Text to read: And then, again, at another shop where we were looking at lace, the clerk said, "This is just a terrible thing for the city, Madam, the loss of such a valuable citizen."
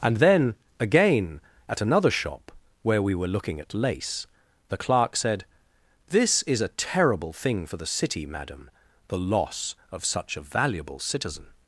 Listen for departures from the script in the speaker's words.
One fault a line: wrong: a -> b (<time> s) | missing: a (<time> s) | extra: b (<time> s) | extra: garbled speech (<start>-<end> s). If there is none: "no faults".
missing: just (6.6 s)